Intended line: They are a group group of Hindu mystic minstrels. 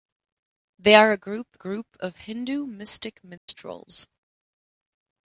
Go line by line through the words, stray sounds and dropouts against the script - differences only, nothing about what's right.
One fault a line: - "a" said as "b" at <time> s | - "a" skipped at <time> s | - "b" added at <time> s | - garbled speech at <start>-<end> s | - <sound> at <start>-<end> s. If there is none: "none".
- dropout at 3.4-3.5 s